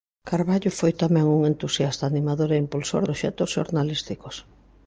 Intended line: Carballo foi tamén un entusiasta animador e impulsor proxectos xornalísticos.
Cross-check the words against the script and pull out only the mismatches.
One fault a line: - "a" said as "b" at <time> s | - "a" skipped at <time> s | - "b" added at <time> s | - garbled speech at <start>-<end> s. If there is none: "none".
none